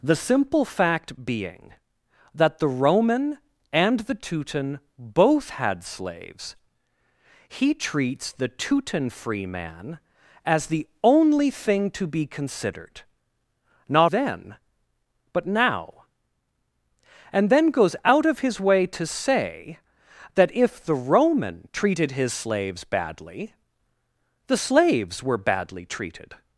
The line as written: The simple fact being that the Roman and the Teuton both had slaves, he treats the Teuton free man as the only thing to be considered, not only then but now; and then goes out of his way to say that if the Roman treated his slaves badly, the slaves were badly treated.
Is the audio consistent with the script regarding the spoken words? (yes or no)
no